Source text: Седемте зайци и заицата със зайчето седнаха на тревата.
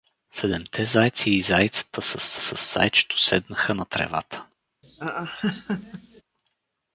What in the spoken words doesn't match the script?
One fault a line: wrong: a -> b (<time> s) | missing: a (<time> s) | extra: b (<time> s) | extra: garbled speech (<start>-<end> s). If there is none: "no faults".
extra: със (2.4 s)